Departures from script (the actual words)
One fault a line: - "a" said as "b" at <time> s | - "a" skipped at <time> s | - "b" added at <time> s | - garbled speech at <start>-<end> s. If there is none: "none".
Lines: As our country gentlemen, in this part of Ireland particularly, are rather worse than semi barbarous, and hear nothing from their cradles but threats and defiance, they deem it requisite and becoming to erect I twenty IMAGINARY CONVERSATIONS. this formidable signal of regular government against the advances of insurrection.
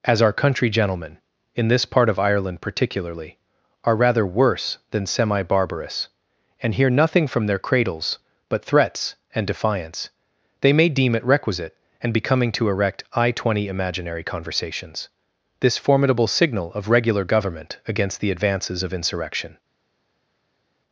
- "may" added at 10.7 s